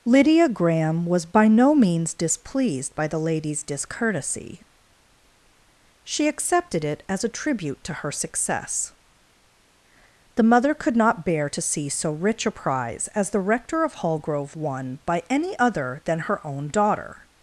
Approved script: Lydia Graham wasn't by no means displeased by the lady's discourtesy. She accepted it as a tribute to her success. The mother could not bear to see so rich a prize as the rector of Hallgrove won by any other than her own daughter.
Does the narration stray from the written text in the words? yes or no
yes